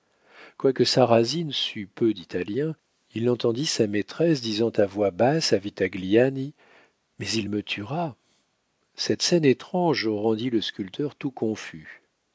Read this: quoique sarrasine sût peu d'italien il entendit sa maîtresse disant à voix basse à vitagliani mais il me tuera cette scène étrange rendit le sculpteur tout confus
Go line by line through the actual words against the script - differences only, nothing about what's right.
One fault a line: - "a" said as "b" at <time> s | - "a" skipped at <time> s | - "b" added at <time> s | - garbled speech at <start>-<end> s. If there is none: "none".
none